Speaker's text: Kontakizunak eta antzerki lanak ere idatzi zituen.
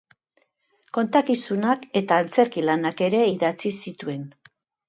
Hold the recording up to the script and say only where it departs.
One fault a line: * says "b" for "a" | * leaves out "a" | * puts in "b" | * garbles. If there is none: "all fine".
all fine